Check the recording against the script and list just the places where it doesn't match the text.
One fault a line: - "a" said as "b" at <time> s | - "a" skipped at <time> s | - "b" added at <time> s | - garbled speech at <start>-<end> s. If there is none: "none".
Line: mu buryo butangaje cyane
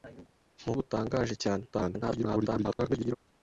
- "buryo" skipped at 0.7 s
- garbled speech at 1.7-3.2 s